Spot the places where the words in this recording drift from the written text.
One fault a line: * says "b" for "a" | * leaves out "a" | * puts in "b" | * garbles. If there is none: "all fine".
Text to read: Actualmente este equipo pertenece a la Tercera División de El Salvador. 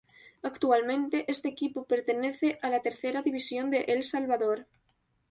all fine